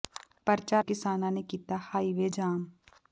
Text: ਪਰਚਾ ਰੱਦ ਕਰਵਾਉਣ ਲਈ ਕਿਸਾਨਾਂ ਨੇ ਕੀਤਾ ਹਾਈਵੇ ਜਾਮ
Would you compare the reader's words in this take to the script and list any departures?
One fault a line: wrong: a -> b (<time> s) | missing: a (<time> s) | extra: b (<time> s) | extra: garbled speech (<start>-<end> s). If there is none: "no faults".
missing: ਰੱਦ ਕਰਵਾਉਣ ਲਈ (0.8 s)